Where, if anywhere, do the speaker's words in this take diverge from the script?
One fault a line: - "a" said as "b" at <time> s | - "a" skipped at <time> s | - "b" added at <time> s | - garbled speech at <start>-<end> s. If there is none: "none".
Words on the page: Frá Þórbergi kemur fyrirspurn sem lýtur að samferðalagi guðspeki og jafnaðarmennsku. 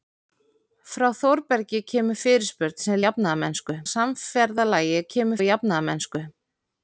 - "lýtur" said as "jafnaðarmennsku" at 3.0 s
- "guðspeki" said as "kemur" at 5.1 s